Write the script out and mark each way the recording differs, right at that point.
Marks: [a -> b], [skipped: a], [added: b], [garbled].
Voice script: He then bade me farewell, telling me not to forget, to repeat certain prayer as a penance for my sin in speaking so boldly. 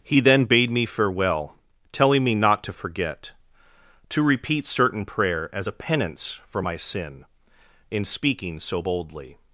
He then bade me farewell, telling me not to forget, to repeat certain prayer as a penance for my sin in speaking so boldly.